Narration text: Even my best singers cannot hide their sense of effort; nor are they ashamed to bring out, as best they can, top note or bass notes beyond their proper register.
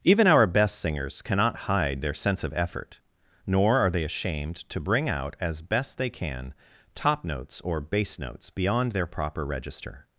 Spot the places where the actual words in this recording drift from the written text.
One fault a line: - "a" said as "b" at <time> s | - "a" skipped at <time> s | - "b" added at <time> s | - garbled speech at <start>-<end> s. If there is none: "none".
- "my" said as "our" at 0.2 s
- "note" said as "notes" at 7.2 s